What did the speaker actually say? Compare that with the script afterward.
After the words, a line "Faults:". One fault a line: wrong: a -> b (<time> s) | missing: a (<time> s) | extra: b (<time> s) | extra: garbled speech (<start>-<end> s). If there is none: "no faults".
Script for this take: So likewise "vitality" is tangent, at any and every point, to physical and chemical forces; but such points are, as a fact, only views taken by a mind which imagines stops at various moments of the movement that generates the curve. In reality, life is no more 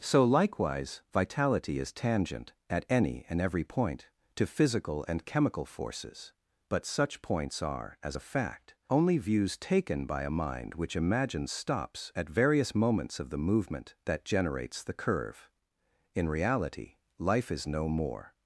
So likewise "vitality" is tangent, at any and every point, to physical and chemical forces; but such points are, as a fact, only views taken by a mind which imagines stops at various moments of the movement that generates the curve. In reality, life is no more
Faults:
no faults